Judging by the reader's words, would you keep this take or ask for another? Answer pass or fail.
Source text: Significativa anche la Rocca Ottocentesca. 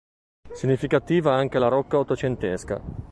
pass